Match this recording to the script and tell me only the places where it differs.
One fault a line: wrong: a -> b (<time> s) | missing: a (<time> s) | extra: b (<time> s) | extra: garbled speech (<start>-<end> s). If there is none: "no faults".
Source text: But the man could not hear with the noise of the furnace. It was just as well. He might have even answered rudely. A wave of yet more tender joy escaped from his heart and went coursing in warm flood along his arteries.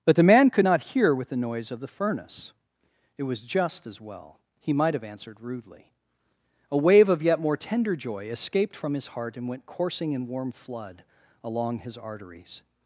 missing: even (5.0 s)